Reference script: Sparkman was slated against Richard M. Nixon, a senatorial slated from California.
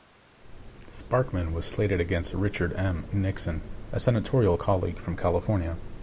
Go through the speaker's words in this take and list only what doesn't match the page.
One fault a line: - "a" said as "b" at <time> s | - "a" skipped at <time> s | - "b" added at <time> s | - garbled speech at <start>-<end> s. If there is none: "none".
- "slated" said as "colleague" at 4.5 s